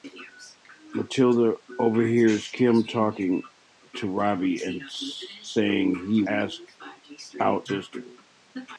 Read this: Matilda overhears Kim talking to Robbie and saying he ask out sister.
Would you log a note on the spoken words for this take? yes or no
no